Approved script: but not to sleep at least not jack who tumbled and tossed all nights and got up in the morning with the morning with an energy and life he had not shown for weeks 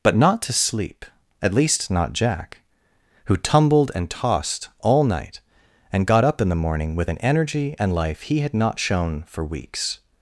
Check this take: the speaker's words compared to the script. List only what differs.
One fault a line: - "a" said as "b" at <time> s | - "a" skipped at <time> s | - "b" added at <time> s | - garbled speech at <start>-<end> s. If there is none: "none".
- "nights" said as "night" at 5.0 s
- "the morning with" skipped at 7.1 s